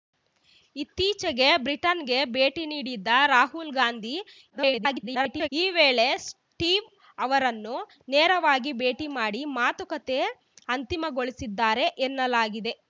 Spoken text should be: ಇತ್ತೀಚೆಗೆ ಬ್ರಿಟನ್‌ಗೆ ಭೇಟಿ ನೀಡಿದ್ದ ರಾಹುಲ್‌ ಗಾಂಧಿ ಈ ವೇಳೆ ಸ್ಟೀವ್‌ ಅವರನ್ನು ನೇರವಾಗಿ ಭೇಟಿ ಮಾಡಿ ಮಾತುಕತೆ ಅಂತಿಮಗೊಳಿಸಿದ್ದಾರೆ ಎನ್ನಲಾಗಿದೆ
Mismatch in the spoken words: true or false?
true